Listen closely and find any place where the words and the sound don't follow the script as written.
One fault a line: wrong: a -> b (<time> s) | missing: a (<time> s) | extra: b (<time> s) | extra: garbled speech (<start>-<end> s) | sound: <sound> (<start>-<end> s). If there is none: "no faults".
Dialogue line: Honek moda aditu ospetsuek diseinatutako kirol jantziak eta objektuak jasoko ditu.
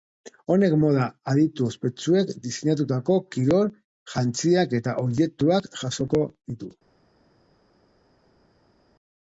no faults